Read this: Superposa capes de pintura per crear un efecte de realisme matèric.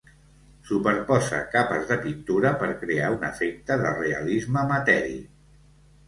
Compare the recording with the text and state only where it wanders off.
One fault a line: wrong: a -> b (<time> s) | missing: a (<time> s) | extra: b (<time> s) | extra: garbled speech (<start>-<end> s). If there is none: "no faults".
no faults